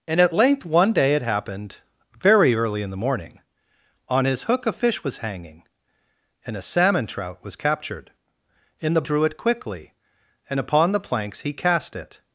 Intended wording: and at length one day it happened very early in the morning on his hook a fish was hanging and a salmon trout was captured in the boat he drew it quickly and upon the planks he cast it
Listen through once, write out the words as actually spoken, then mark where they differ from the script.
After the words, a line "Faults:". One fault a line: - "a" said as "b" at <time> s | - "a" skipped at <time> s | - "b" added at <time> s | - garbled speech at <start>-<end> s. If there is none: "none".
and at length one day it happened very early in the morning on his hook a fish was hanging and a salmon trout was captured in the drew it quickly and upon the planks he cast it
Faults:
- "boat he" skipped at 9.0 s